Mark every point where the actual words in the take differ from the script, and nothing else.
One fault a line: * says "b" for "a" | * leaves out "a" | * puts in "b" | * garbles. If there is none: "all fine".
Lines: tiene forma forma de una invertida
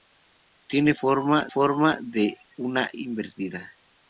all fine